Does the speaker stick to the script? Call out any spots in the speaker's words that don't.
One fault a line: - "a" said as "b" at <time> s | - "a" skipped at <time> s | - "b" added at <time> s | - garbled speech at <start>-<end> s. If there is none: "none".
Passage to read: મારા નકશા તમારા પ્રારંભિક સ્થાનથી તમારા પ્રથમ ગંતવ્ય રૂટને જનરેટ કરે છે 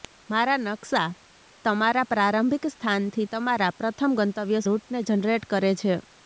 none